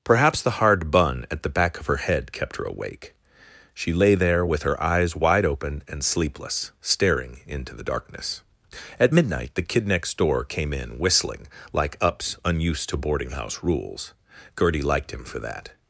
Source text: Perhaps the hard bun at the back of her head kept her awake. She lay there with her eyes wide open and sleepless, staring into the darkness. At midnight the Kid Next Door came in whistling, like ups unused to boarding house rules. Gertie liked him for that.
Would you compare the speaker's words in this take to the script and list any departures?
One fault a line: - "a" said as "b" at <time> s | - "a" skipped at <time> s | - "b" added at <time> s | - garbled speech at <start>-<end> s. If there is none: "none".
none